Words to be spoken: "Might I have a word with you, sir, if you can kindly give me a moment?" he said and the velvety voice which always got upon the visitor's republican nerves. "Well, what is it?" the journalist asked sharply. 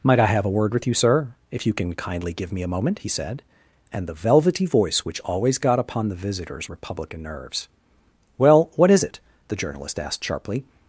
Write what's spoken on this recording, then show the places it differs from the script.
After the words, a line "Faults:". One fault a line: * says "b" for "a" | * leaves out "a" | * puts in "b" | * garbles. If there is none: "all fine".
"Might I have a word with you, sir, if you can kindly give me a moment?" he said and the velvety voice which always got upon the visitor's republican nerves. "Well, what is it?" the journalist asked sharply.
Faults:
all fine